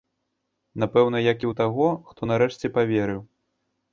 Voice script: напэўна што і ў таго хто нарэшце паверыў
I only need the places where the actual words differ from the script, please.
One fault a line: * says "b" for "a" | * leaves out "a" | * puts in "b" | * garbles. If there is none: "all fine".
* says "як" for "што"